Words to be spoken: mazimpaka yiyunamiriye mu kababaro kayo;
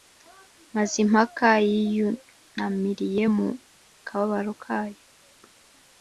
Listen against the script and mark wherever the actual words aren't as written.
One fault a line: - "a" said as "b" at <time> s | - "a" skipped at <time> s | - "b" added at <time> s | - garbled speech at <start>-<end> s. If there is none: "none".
none